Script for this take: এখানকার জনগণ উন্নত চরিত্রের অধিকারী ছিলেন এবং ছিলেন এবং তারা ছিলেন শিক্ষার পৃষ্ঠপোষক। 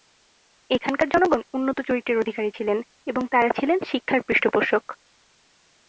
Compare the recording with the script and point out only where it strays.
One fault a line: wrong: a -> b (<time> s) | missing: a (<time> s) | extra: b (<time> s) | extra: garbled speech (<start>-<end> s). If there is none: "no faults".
missing: ছিলেন এবং (3.2 s)